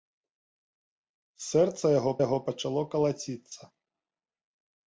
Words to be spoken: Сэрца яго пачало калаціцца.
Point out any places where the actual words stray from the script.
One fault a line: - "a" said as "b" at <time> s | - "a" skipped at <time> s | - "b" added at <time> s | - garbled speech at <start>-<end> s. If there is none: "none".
- "яго" added at 2.3 s